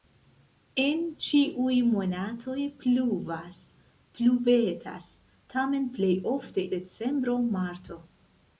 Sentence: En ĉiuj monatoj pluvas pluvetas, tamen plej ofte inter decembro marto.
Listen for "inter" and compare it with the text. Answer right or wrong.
wrong